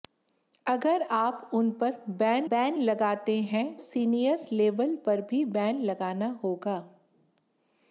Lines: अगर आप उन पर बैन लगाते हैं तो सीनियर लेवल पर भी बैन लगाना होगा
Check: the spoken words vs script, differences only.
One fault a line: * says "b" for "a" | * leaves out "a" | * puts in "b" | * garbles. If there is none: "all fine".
* puts in "बैन"
* leaves out "तो"